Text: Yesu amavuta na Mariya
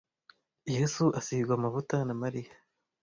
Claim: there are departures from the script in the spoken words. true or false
true